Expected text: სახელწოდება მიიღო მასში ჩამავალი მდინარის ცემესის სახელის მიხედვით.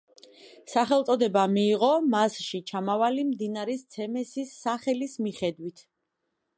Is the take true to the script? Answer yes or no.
yes